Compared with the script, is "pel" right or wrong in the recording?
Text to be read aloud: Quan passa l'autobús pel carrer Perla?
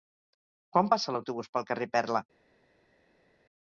right